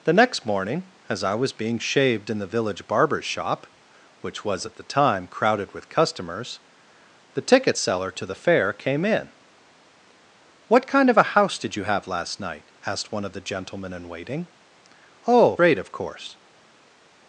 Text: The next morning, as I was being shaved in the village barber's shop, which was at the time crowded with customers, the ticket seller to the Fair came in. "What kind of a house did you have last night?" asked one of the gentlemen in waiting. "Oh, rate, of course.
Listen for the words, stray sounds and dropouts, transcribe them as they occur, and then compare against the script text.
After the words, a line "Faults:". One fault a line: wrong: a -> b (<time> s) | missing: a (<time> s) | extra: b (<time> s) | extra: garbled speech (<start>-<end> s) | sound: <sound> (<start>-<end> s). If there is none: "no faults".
The next morning, as I was being shaved in the village barber's shop, which was at the time crowded with customers, the ticket seller to the Fair came in. "What kind of a house did you have last night?" asked one of the gentlemen in waiting. "Oh, rate, of course.
Faults:
no faults